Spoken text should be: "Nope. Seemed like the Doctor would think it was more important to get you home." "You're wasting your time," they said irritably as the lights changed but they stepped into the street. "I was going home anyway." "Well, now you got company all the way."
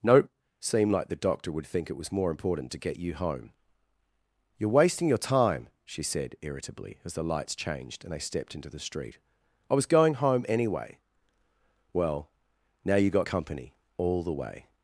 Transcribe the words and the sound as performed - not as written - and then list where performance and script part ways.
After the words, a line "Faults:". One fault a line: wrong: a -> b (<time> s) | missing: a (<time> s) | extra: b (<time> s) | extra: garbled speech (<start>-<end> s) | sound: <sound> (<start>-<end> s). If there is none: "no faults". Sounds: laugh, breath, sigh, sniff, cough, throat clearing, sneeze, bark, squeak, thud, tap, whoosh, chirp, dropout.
"Nope. Seemed like the Doctor would think it was more important to get you home." "You're wasting your time," she said irritably as the lights changed and they stepped into the street. "I was going home anyway." "Well, now you got company all the way."
Faults:
wrong: they -> she (5.8 s)
wrong: but -> and (8.0 s)